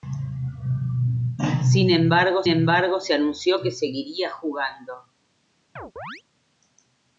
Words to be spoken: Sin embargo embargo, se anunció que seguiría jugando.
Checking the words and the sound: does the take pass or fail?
fail